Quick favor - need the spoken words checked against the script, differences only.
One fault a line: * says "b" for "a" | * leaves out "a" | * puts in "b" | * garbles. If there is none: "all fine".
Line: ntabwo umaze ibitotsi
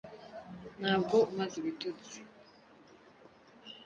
all fine